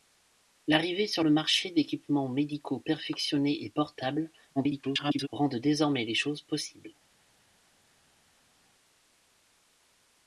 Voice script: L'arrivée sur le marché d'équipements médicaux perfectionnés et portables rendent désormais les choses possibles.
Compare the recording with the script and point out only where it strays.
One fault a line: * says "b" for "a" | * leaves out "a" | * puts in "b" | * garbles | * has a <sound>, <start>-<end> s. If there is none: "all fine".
* garbles